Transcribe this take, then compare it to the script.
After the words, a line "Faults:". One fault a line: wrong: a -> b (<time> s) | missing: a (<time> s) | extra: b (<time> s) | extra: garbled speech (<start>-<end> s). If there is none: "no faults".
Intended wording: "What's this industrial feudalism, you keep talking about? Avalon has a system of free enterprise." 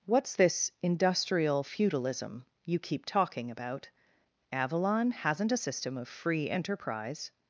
"What's this industrial feudalism, you keep talking about? Avalon hasn't a system of free enterprise."
Faults:
wrong: has -> hasn't (5.1 s)